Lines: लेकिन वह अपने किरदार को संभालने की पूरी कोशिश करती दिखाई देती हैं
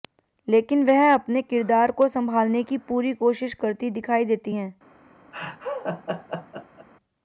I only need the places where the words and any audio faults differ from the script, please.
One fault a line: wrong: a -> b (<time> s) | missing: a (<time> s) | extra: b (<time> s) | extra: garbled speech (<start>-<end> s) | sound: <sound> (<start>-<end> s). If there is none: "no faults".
sound: laugh (5.3-6.9 s)